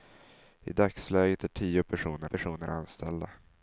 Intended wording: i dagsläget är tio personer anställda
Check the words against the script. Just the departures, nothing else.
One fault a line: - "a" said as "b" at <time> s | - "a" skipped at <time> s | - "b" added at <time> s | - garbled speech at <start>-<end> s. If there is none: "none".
- "personer" added at 2.2 s